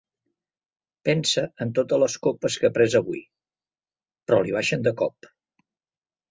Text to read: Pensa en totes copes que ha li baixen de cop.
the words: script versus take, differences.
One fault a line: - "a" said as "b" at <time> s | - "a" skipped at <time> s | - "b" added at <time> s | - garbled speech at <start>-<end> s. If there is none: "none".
- "les" added at 2.0 s
- "pres avui però" added at 2.8 s